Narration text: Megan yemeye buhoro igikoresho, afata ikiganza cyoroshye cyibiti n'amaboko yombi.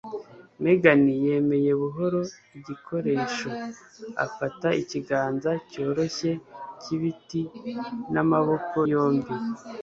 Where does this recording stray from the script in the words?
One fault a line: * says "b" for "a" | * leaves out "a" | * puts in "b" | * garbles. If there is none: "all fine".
all fine